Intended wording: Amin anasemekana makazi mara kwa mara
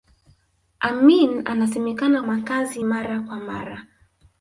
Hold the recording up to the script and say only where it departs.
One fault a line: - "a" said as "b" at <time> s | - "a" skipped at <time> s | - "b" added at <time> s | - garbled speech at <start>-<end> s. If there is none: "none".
none